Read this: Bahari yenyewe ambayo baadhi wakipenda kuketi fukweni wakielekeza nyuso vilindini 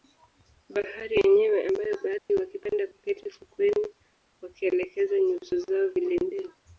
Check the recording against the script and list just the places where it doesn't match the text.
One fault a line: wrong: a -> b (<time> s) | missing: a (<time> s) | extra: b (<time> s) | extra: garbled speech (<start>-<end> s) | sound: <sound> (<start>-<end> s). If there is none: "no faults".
sound: dropout (2.2-2.3 s)
extra: zao (5.6 s)